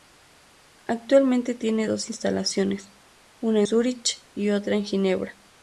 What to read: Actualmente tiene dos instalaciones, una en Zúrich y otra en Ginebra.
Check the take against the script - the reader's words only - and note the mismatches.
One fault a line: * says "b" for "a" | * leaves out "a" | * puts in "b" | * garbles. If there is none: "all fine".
* leaves out "en"